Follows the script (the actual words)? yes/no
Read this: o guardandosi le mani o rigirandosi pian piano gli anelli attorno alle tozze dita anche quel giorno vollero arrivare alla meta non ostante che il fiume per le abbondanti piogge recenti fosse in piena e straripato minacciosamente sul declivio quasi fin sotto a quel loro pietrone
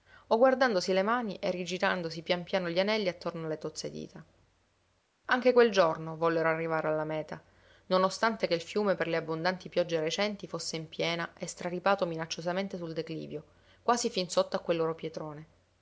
no